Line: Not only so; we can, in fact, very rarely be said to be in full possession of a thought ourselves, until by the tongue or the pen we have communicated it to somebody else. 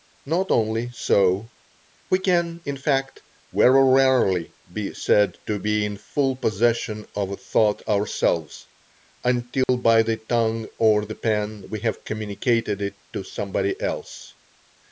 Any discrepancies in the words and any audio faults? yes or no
yes